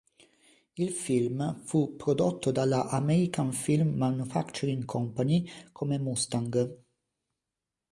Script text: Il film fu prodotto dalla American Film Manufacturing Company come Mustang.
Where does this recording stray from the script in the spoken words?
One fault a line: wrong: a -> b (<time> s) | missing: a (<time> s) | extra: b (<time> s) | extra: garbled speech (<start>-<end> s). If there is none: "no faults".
no faults